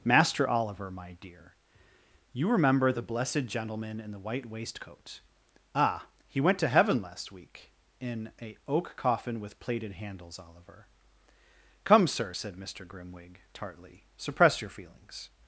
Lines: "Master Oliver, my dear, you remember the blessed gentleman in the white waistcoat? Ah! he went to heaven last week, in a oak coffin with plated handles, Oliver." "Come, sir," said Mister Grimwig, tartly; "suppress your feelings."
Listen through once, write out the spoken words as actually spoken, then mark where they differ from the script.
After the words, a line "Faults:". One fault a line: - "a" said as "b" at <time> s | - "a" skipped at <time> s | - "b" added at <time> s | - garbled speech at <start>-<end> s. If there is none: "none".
"Master Oliver, my dear, you remember the blessed gentleman in the white waistcoat? Ah! he went to heaven last week, in a oak coffin with plated handles, Oliver." "Come, sir," said Mister Grimwig, tartly; "suppress your feelings."
Faults:
none